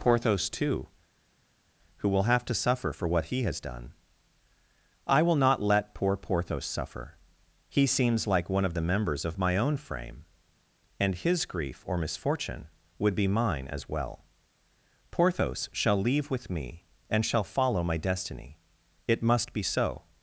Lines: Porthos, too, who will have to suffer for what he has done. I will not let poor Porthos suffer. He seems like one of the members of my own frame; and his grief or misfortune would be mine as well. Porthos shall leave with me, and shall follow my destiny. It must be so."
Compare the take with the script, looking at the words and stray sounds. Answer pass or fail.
pass